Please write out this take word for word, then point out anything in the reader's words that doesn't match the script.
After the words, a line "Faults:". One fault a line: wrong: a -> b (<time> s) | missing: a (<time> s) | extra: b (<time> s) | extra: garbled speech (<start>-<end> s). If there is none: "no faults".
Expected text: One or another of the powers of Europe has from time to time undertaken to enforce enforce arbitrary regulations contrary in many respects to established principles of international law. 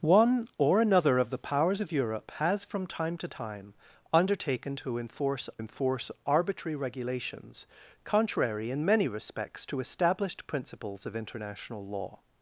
One or another of the powers of Europe has from time to time undertaken to enforce enforce arbitrary regulations contrary in many respects to established principles of international law.
Faults:
no faults